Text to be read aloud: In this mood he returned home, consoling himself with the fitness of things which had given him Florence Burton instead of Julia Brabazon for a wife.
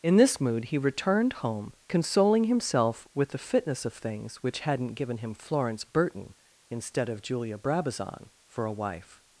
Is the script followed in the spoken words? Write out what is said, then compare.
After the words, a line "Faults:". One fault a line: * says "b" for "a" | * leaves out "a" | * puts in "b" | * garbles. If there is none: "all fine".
In this mood he returned home, consoling himself with the fitness of things which hadn't given him Florence Burton instead of Julia Brabazon for a wife.
Faults:
* says "hadn't" for "had"